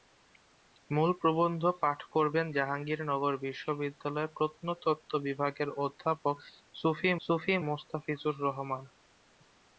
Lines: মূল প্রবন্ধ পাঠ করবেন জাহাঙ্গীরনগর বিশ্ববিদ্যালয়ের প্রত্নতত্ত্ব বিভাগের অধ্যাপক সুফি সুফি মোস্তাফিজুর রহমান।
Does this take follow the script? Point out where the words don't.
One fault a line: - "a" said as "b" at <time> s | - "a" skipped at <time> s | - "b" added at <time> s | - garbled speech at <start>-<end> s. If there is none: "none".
none